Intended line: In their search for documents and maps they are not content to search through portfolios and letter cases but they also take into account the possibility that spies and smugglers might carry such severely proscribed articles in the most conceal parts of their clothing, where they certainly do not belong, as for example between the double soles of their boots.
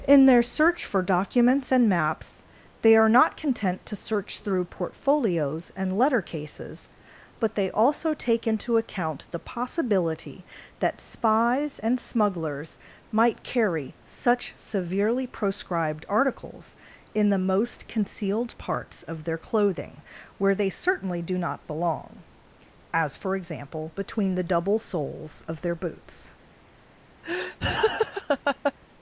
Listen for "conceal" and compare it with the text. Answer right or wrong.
wrong